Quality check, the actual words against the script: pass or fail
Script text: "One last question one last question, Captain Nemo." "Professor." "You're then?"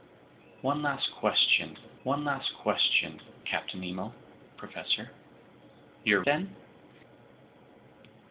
pass